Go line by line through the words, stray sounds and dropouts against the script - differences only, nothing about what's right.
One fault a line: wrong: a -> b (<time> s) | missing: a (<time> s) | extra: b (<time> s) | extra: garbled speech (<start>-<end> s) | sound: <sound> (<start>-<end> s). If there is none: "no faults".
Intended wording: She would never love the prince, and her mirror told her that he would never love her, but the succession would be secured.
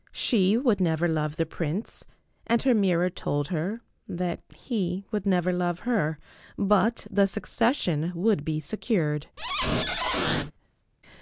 sound: squeak (9.4-10.5 s)